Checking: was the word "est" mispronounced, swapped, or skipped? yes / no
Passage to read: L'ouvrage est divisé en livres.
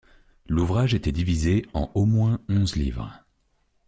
yes